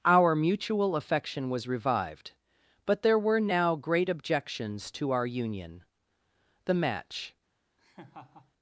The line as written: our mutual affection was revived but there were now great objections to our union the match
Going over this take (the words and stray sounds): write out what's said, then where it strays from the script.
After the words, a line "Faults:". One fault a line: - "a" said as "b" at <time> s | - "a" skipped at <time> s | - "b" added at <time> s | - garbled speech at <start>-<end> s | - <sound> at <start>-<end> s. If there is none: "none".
our mutual affection was revived but there were now great objections to our union the match
Faults:
- laugh at 7.8-8.5 s